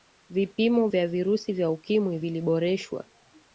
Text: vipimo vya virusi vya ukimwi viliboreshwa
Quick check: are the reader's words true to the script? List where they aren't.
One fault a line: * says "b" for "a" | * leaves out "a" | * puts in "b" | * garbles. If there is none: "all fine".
all fine